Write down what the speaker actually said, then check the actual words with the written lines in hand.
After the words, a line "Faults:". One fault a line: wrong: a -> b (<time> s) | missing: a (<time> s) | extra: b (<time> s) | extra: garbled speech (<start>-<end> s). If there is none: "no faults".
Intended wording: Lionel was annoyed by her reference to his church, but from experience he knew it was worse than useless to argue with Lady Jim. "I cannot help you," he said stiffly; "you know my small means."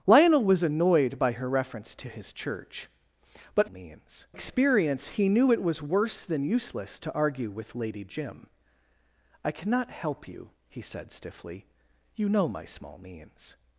Lionel was annoyed by her reference to his church, but means experience he knew it was worse than useless to argue with Lady Jim. "I cannot help you," he said stiffly; "you know my small means."
Faults:
wrong: from -> means (3.7 s)